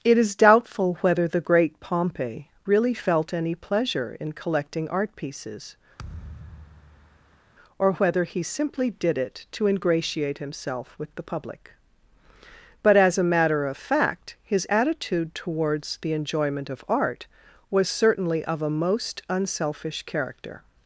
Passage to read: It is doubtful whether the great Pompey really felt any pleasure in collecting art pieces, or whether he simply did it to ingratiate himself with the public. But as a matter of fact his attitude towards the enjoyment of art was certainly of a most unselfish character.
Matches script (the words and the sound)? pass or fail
fail